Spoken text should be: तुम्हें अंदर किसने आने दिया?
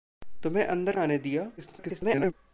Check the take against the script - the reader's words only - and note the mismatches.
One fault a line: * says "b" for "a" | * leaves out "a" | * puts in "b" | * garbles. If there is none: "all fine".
* leaves out "किसने"
* garbles